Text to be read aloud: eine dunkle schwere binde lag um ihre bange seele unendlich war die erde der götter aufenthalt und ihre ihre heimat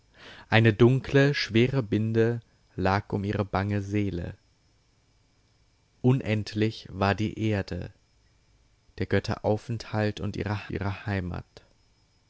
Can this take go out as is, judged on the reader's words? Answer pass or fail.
pass